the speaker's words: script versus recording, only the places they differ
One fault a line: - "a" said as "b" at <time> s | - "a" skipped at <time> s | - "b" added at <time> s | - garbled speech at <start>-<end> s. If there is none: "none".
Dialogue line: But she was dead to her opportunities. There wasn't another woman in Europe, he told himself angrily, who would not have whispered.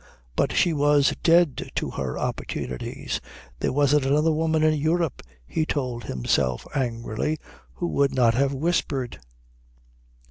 none